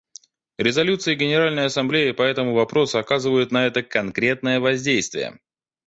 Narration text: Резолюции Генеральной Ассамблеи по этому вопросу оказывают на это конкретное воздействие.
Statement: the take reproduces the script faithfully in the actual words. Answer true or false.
true